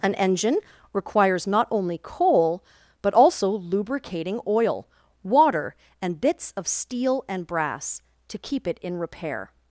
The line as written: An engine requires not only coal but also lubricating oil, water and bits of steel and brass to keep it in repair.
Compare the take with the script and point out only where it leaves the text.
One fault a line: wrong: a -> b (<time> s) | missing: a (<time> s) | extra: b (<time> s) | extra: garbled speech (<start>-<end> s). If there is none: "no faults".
no faults